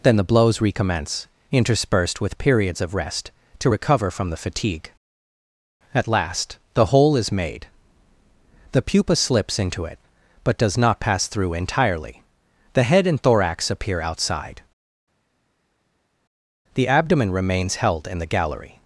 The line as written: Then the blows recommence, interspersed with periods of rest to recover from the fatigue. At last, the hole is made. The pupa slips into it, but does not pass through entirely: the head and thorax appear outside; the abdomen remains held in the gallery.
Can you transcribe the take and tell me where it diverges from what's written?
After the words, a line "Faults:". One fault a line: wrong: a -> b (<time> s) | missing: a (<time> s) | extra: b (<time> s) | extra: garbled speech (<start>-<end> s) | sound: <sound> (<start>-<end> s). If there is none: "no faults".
Then the blows recommence, interspersed with periods of rest to recover from the fatigue. At last, the hole is made. The pupa slips into it, but does not pass through entirely: the head and thorax appear outside; the abdomen remains held in the gallery.
Faults:
no faults